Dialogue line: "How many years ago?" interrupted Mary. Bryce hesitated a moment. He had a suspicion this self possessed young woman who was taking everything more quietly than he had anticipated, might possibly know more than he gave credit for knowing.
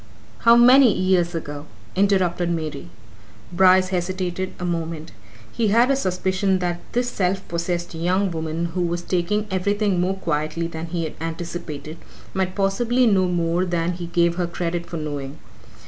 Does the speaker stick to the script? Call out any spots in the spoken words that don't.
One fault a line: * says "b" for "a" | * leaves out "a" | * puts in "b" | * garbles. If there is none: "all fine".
* puts in "that"
* puts in "her"